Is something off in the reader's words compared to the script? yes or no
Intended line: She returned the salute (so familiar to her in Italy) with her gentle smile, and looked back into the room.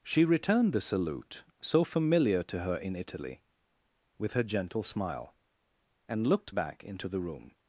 no